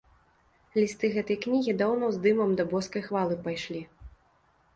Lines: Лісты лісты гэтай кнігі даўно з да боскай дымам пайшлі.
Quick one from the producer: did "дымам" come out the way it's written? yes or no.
no